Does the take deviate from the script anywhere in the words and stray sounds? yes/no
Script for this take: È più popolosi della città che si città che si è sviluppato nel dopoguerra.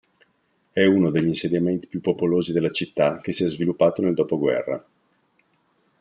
yes